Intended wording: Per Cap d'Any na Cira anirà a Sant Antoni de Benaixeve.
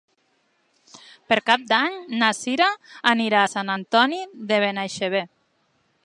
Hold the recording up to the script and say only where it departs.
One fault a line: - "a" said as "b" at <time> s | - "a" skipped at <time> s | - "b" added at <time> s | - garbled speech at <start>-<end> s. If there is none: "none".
none